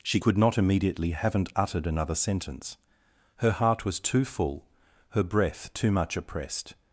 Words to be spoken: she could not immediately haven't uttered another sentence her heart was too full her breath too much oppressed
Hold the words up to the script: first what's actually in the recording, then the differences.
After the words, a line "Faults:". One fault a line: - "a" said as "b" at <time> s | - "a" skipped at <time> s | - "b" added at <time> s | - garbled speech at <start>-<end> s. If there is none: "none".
she could not immediately haven't uttered another sentence her heart was too full her breath too much oppressed
Faults:
none